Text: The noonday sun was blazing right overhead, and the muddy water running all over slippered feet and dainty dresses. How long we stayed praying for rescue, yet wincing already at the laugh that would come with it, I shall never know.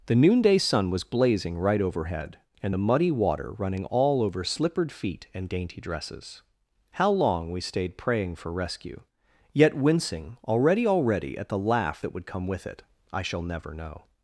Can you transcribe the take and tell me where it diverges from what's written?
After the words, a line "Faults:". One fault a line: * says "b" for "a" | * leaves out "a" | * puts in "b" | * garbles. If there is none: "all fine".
The noonday sun was blazing right overhead, and the muddy water running all over slippered feet and dainty dresses. How long we stayed praying for rescue, yet wincing already already at the laugh that would come with it, I shall never know.
Faults:
* puts in "already"